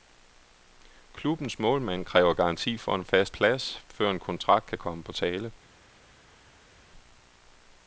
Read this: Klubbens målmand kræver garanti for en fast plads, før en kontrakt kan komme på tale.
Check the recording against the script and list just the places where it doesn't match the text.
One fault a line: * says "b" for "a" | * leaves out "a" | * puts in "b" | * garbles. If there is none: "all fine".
all fine